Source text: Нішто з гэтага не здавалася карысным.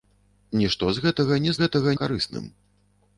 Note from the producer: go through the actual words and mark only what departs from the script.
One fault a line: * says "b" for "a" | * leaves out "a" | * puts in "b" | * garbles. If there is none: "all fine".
* says "гэтага" for "здавалася"